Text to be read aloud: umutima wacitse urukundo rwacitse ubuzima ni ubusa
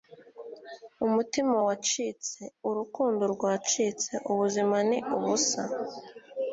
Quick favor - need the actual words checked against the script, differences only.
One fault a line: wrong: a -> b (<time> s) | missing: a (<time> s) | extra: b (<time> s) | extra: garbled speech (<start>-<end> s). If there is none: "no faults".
no faults